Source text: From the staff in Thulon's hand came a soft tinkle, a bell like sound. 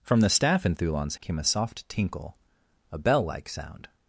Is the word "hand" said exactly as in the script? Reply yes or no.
no